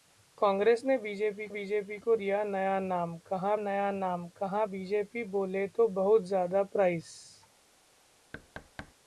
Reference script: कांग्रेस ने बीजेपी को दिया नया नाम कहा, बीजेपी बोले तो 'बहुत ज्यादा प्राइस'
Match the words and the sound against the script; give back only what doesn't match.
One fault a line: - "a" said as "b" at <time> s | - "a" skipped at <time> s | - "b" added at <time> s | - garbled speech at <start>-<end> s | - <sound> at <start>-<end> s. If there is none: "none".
- "बीजेपी" added at 1.5 s
- "नया नाम कहा" added at 3.6 s
- thud at 8.3-8.9 s